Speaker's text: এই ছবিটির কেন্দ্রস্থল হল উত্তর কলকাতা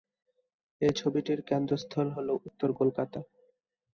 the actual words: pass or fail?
pass